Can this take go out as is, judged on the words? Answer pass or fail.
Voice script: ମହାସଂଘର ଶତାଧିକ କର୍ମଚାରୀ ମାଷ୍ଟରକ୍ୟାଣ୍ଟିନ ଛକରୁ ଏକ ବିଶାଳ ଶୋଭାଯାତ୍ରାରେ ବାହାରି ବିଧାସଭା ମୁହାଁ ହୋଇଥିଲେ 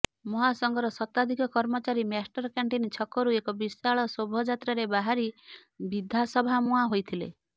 pass